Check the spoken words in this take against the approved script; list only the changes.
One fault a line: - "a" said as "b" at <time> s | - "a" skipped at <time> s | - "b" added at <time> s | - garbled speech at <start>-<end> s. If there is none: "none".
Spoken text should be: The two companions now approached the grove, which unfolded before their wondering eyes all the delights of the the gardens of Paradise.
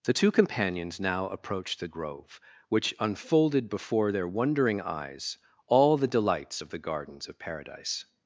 - "the" skipped at 6.8 s